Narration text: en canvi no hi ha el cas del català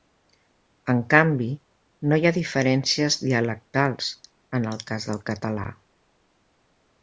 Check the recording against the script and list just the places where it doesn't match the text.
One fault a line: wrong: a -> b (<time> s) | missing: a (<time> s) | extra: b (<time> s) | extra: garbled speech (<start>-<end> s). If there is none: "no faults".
extra: diferències dialectals en (2.4 s)